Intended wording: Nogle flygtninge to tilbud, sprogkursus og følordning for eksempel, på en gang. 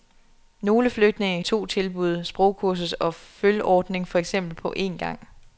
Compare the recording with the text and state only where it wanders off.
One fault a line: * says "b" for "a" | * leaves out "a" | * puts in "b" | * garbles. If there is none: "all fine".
all fine